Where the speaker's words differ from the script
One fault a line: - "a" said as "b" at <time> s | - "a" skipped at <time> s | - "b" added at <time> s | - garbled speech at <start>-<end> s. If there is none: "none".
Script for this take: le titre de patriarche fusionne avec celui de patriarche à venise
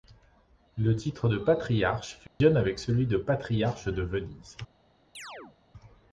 - "à" said as "de" at 3.9 s